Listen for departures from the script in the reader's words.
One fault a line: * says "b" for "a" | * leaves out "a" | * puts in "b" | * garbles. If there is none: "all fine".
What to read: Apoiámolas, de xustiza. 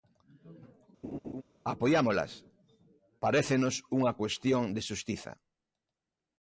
* puts in "parécenos unha cuestión"